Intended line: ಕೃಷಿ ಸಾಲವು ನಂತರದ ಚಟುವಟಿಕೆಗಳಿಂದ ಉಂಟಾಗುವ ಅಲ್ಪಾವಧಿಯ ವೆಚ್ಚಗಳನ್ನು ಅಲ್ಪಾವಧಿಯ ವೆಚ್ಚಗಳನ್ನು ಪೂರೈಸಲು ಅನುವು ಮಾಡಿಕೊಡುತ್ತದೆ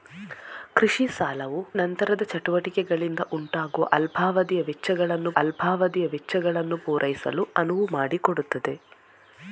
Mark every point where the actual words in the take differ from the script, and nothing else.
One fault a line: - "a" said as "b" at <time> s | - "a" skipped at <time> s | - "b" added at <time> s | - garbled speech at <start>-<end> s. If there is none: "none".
none